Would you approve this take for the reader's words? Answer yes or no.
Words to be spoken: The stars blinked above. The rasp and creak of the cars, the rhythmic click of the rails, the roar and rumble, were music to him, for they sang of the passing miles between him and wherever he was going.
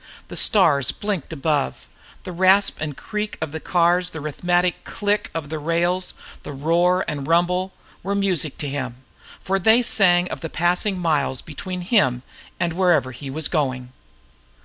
yes